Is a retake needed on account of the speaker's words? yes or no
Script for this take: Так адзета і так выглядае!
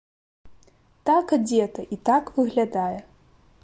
no